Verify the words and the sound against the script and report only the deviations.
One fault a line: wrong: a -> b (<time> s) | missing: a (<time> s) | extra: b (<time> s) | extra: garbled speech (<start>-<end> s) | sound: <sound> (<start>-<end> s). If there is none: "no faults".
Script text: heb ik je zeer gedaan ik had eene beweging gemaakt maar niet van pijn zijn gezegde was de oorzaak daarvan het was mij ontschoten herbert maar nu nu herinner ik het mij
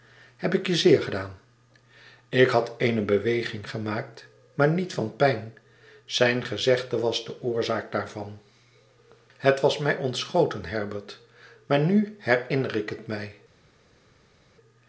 missing: nu (12.2 s)